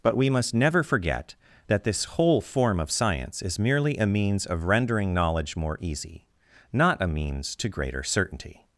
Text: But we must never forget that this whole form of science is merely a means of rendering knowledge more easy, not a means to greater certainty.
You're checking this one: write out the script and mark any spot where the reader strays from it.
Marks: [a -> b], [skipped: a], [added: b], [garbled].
But we must never forget that this whole form of science is merely a means of rendering knowledge more easy, not a means to greater certainty.